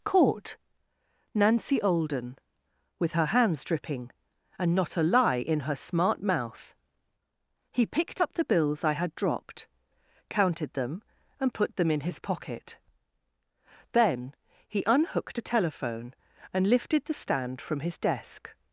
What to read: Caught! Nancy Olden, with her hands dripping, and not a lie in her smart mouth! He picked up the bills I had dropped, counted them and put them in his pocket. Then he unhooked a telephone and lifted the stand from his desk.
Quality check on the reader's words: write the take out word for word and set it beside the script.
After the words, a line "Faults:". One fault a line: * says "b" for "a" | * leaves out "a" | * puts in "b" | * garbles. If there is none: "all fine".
Caught! Nancy Olden, with her hands dripping, and not a lie in her smart mouth! He picked up the bills I had dropped, counted them and put them in his pocket. Then he unhooked a telephone and lifted the stand from his desk.
Faults:
all fine